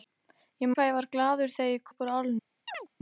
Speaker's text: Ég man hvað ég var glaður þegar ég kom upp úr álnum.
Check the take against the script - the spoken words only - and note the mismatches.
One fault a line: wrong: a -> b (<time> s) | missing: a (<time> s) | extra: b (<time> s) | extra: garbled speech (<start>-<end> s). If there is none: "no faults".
missing: man (0.7 s)
missing: kom (1.9 s)